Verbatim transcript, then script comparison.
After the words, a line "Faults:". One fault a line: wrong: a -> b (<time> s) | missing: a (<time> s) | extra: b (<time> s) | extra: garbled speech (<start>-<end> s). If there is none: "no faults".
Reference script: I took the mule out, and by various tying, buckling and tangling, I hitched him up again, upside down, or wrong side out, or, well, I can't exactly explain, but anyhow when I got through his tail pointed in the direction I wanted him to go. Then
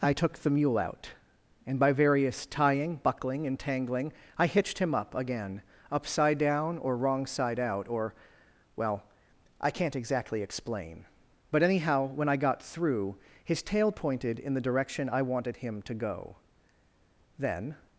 I took the mule out, and by various tying, buckling and tangling, I hitched him up again, upside down, or wrong side out, or, well, I can't exactly explain, but anyhow when I got through his tail pointed in the direction I wanted him to go. Then
Faults:
no faults